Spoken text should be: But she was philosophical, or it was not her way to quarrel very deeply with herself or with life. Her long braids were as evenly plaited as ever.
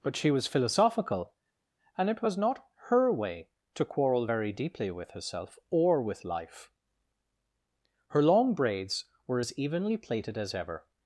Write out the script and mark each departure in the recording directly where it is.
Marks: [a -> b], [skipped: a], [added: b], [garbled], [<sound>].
But she was philosophical, [or -> and] it was not her way to quarrel very deeply with herself or with life. Her long braids were as evenly plaited as ever.